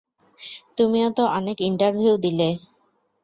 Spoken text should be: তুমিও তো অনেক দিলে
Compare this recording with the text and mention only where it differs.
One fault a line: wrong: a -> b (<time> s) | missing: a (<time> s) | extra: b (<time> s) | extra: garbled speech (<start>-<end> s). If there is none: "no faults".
extra: ইন্টারভিউ (1.6 s)